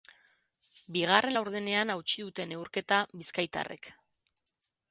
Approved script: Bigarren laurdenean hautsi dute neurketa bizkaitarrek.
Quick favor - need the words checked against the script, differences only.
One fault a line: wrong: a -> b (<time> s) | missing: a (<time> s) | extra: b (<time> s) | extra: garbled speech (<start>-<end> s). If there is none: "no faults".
no faults